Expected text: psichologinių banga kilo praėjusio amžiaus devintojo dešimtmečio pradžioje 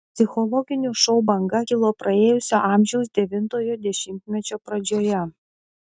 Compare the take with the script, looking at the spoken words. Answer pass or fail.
fail